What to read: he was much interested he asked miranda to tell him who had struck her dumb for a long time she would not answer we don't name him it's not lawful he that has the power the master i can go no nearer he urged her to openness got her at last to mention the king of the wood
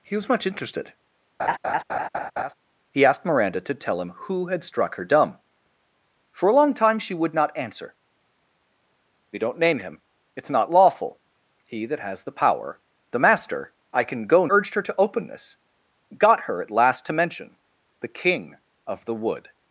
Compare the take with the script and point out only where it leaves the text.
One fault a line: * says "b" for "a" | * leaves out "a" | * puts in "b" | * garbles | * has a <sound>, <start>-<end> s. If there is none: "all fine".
* has a laugh, 1.4-2.5 s
* leaves out "no nearer he"